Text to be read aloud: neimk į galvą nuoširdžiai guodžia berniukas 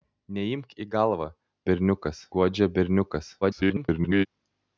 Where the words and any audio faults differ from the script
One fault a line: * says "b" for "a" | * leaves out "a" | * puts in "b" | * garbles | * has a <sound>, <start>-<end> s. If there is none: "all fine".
* says "berniukas" for "nuoširdžiai"
* garbles